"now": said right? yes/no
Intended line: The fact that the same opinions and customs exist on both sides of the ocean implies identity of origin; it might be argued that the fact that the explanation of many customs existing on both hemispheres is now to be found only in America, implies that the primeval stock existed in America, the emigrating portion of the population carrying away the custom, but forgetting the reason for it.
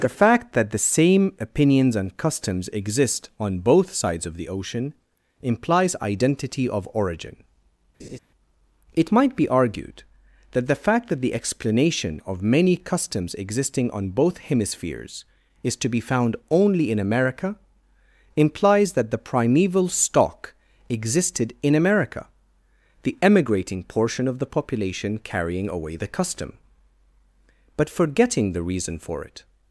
no